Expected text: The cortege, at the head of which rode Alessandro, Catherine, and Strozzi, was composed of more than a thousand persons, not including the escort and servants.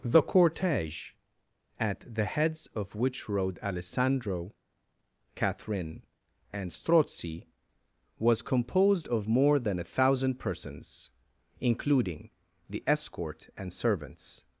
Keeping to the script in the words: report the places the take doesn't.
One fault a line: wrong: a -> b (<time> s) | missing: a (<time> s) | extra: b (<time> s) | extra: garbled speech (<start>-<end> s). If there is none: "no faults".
wrong: head -> heads (2.2 s)
missing: not (11.1 s)